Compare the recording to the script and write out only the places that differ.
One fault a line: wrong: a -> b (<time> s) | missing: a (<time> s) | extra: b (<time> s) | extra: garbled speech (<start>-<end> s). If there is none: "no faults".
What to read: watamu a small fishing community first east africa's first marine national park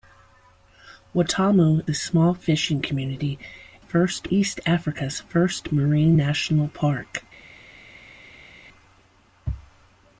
no faults